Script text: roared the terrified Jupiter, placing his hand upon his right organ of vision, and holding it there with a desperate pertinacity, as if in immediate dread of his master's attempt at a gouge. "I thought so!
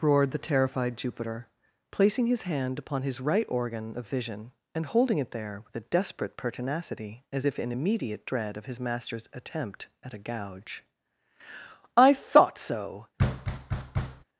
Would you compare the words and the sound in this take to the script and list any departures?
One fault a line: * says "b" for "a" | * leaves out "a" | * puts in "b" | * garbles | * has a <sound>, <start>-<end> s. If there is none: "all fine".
* has a thud, 13.2-14.2 s